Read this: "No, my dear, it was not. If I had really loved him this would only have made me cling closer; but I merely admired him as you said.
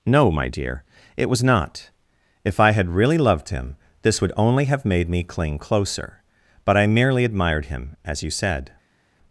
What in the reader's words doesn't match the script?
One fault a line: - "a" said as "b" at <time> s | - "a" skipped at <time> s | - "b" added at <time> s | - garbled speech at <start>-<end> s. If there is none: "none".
none